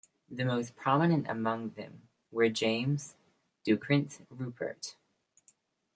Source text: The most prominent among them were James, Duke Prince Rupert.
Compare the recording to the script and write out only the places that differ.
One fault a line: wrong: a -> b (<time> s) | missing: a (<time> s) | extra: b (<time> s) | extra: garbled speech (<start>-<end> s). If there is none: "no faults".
no faults